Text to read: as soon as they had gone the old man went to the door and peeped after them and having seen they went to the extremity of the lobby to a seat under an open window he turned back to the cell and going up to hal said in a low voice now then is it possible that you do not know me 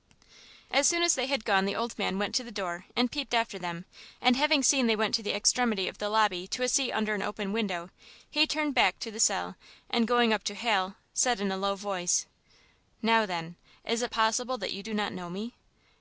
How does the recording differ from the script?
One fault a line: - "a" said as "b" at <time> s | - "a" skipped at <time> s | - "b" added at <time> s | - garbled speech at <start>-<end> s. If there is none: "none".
none